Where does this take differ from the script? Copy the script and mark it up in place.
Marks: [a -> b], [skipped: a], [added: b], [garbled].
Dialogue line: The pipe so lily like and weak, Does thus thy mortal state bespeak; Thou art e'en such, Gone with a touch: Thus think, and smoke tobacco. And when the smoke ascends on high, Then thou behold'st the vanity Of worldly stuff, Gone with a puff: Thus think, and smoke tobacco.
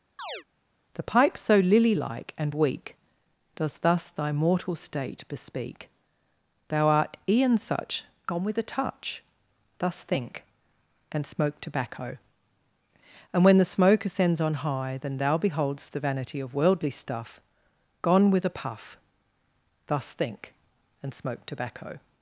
The pipe so lily like and weak, Does thus thy mortal state bespeak; Thou art e'en such, Gone with a touch: Thus think, and smoke tobacco. And when the smoke ascends on high, Then thou behold'st the vanity Of worldly stuff, Gone with a puff: Thus think, and smoke tobacco.